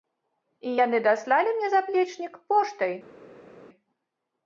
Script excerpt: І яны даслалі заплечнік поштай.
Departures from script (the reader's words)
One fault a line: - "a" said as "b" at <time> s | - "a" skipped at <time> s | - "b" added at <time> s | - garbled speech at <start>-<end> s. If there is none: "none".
- "мне" added at 1.6 s